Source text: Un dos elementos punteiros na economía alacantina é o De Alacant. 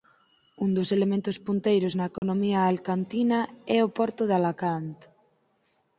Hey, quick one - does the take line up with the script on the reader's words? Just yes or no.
no